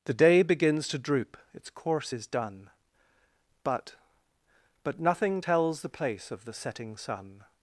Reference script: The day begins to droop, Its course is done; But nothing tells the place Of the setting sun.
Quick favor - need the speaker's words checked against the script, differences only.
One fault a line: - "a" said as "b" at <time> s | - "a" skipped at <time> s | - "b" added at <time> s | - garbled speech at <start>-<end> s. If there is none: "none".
- "But" added at 4.8 s